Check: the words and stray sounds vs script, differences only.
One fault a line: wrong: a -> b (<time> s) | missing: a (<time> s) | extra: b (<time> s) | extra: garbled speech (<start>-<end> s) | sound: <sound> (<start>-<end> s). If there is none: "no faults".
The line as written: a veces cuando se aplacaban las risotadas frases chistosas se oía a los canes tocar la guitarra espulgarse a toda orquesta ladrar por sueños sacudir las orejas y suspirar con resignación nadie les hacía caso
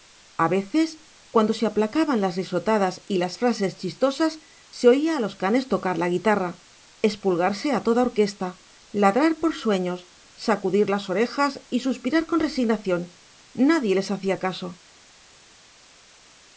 extra: y las (3.0 s)